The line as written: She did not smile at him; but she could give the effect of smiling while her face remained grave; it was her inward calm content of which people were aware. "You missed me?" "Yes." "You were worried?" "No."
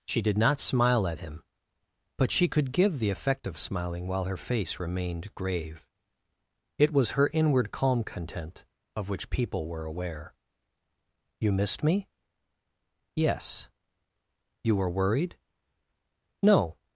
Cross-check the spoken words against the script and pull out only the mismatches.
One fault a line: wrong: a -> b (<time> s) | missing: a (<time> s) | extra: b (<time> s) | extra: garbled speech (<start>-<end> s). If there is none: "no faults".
no faults